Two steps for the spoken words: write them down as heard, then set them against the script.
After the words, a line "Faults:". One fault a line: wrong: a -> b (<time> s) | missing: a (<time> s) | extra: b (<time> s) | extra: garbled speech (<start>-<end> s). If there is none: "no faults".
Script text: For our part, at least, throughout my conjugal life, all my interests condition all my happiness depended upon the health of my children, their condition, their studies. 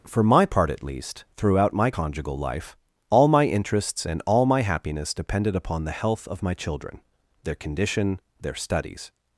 For my part, at least, throughout my conjugal life, all my interests and all my happiness depended upon the health of my children, their condition, their studies.
Faults:
wrong: our -> my (0.2 s)
wrong: condition -> and (4.1 s)